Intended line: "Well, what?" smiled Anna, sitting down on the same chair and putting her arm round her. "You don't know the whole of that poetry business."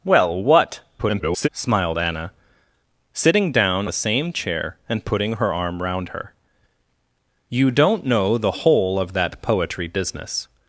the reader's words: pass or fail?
fail